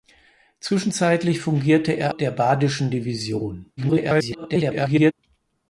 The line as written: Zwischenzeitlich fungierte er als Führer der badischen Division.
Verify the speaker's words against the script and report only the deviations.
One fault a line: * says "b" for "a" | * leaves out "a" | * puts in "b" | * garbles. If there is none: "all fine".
* leaves out "als Führer"
* garbles